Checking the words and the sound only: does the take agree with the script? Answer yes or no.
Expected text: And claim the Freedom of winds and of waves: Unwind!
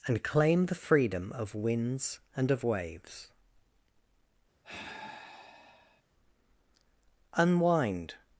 no